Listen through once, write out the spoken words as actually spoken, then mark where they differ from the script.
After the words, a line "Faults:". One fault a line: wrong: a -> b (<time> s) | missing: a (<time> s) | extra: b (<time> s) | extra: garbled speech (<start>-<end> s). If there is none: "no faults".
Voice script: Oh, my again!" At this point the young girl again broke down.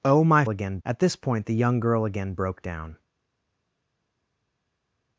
Oh, my again!" At this point the young girl again broke down.
Faults:
no faults